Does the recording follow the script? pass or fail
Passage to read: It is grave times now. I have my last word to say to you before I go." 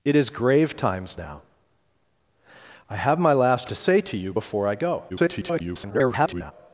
fail